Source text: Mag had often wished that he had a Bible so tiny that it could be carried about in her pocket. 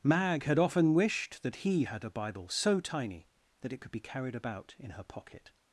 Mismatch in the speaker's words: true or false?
false